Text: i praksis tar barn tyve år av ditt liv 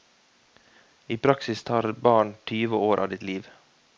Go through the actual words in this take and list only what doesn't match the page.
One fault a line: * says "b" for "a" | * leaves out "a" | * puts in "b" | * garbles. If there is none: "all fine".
all fine